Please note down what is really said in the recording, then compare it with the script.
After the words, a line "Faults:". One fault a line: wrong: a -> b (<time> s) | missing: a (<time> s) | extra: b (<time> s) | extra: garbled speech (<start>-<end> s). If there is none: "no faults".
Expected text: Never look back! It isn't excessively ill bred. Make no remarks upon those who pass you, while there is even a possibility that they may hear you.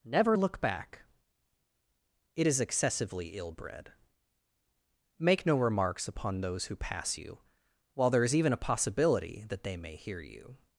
Never look back! It is excessively ill bred. Make no remarks upon those who pass you, while there is even a possibility that they may hear you.
Faults:
wrong: isn't -> is (2.4 s)